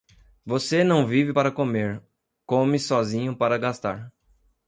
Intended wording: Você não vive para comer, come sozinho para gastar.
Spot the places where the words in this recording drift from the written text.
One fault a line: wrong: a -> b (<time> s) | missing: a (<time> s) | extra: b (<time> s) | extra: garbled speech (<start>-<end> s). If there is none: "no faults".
no faults